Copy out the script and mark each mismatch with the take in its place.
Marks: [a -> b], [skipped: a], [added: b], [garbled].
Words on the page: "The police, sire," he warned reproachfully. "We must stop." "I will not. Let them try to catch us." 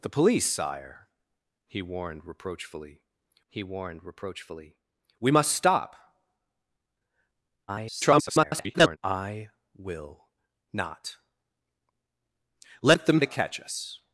"The police, sire," he warned reproachfully. [added: he warned reproachfully] "We must stop." [garbled] "I will not. Let them [skipped: try] to catch us."